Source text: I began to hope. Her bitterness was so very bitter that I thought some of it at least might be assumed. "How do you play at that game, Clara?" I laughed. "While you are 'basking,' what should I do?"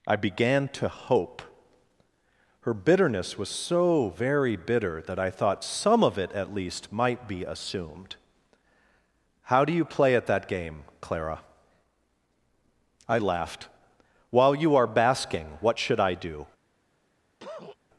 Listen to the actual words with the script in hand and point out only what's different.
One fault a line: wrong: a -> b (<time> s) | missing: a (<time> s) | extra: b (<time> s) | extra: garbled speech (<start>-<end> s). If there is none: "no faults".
no faults